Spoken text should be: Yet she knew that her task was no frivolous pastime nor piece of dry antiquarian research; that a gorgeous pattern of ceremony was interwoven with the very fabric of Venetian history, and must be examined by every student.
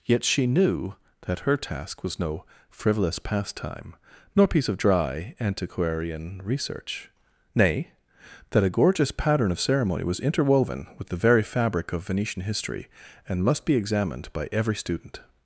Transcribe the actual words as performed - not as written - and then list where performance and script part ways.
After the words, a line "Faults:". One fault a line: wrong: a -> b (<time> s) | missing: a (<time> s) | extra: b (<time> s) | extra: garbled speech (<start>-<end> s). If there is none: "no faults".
Yet she knew that her task was no frivolous pastime nor piece of dry antiquarian research; nay that a gorgeous pattern of ceremony was interwoven with the very fabric of Venetian history, and must be examined by every student.
Faults:
extra: nay (7.5 s)